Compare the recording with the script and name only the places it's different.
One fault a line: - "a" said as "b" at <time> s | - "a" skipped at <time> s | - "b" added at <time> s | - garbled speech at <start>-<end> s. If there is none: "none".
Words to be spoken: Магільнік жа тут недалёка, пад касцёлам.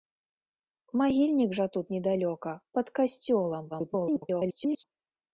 - garbled speech at 3.7-4.8 s